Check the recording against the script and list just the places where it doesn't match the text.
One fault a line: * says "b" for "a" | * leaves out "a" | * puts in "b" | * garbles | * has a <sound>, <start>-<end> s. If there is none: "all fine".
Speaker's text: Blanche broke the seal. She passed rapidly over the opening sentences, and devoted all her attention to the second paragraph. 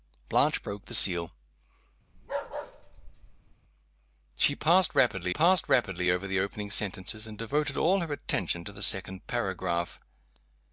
* has a bark, 2.1-3.6 s
* puts in "passed rapidly"